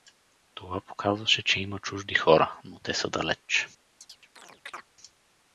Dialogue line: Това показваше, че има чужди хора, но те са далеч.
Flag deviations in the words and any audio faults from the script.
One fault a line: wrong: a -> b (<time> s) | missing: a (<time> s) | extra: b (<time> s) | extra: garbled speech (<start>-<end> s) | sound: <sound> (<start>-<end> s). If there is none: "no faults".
sound: chirp (4.0-4.9 s)